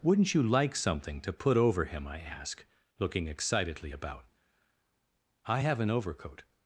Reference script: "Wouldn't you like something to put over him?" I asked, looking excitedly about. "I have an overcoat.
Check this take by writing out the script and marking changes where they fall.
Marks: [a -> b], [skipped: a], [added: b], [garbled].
"Wouldn't you like something to put over him?" I [asked, -> ask] looking excitedly about. "I have an overcoat.